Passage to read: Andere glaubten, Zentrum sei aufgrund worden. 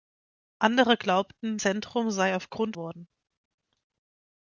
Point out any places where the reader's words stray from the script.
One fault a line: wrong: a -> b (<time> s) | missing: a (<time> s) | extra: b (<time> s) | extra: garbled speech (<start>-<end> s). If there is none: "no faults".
no faults